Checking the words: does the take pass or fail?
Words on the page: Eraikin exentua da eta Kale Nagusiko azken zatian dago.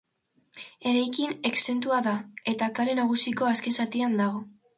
pass